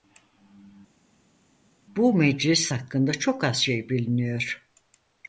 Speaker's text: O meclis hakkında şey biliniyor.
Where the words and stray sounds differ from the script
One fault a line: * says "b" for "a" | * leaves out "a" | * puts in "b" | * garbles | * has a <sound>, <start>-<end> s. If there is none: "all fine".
* says "Bu" for "O"
* puts in "çok az"